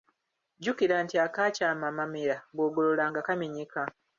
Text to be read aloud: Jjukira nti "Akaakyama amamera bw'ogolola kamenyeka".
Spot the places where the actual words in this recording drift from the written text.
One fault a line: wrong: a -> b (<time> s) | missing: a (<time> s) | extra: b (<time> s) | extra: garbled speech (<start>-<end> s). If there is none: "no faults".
extra: nga (3.1 s)